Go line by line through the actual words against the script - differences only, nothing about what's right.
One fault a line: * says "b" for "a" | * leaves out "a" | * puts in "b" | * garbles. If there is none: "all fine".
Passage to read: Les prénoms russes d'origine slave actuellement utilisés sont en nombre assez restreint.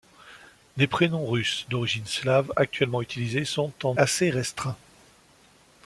* leaves out "nombre"